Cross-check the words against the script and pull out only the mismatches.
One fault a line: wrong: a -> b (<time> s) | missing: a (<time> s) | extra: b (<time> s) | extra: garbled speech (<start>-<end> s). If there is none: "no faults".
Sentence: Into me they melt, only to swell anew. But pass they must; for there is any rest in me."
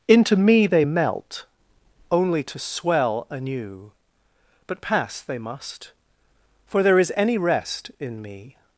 no faults